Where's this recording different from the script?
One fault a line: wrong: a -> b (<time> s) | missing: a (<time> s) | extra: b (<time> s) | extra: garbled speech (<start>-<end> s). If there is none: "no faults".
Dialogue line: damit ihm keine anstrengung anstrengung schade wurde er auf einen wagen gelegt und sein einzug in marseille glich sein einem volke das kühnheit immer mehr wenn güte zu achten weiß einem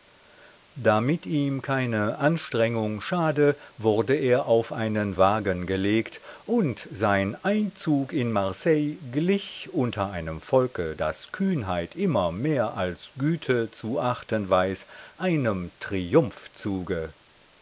missing: anstrengung (3.0 s)
wrong: sein -> unter (9.7 s)
wrong: wenn -> als (12.7 s)